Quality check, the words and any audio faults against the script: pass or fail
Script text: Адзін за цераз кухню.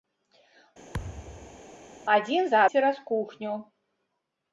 fail